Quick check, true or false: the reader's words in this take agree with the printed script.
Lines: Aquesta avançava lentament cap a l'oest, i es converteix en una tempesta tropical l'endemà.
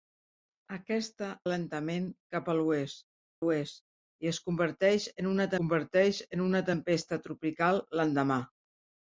false